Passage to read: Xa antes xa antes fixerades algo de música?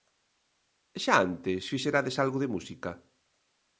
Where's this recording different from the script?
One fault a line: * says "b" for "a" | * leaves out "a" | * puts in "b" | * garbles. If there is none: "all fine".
* leaves out "xa antes"